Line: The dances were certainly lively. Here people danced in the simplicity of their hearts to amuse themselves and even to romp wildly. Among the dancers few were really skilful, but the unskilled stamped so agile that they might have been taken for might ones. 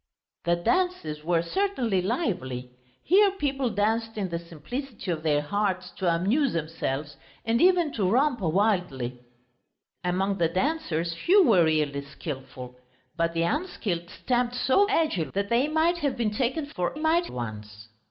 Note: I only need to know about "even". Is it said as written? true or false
true